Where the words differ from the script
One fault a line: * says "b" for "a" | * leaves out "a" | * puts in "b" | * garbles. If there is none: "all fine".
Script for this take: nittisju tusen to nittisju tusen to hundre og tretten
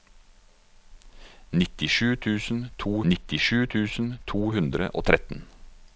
all fine